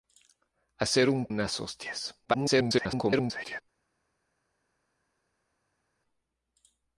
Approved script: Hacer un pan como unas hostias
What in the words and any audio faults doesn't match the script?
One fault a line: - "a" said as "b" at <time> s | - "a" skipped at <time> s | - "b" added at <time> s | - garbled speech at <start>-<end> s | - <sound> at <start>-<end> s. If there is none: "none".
- "pan como" skipped at 1.3 s
- garbled speech at 2.2-3.6 s